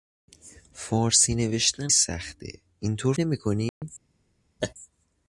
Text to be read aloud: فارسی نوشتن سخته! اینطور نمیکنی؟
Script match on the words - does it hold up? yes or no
yes